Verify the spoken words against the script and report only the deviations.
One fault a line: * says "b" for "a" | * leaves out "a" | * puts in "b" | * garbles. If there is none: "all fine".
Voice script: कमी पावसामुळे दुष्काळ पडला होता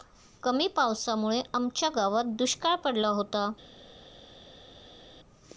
* puts in "आमच्या गावात"